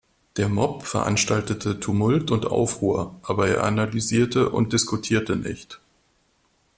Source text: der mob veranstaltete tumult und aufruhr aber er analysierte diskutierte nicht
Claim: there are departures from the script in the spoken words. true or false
true